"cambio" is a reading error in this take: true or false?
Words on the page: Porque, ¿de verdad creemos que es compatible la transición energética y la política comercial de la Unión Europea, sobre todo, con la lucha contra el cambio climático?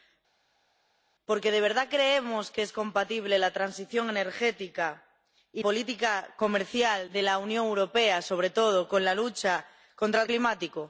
true